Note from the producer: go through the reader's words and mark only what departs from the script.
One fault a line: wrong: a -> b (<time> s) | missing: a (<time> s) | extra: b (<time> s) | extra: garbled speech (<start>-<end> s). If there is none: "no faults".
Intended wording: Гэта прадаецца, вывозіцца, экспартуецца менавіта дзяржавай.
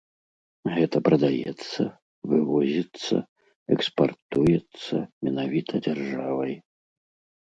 no faults